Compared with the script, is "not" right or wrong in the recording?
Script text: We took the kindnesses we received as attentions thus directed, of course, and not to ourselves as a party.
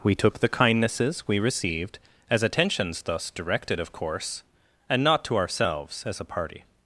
right